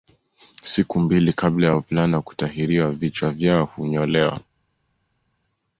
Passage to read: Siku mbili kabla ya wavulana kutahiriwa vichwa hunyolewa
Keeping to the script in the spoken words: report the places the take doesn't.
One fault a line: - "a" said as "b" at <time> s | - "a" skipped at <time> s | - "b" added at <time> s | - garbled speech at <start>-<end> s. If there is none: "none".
- "vyao" added at 3.3 s